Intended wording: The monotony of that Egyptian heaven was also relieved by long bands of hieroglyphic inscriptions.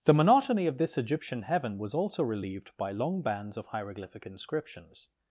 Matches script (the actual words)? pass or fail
fail